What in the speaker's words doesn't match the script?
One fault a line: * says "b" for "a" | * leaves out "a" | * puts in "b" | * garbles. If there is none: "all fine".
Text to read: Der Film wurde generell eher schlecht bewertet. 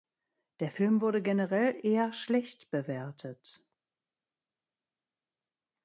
all fine